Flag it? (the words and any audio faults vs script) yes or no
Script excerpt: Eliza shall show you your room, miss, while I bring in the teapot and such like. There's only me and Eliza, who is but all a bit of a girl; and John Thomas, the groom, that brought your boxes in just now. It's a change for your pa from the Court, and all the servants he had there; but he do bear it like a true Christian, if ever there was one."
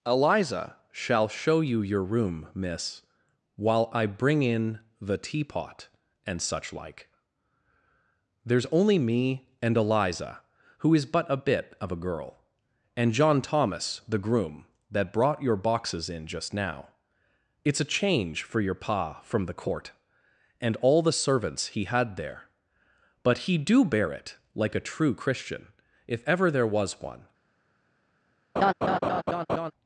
yes